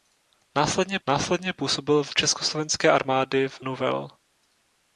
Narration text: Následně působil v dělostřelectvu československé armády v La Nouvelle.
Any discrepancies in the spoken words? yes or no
yes